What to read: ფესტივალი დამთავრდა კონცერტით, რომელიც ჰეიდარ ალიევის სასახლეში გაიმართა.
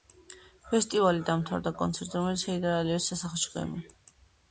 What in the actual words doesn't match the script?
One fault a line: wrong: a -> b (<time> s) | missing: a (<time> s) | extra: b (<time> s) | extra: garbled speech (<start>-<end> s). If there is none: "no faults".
no faults